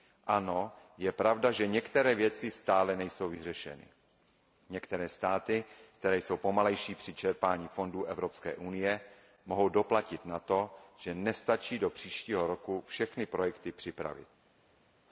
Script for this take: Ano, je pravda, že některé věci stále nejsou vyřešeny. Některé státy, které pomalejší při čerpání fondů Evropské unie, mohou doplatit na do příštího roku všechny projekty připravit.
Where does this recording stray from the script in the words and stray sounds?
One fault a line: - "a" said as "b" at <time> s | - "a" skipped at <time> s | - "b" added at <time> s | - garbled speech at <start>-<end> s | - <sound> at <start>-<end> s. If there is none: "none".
- "jsou" added at 6.2 s
- "to že nestačí" added at 10.4 s